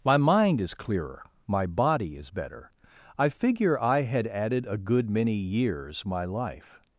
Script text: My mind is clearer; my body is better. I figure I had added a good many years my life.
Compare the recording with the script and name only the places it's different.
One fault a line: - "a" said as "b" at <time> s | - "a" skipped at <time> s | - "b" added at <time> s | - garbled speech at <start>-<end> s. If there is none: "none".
none